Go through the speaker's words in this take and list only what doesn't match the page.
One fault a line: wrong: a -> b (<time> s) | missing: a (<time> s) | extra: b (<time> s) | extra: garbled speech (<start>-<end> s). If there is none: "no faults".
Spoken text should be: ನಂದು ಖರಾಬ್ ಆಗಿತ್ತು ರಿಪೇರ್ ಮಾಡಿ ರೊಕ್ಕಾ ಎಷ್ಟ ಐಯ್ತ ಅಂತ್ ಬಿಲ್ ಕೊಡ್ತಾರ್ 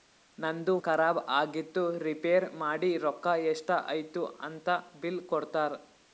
no faults